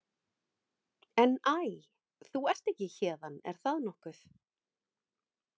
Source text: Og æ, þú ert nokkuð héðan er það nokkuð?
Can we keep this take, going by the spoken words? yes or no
no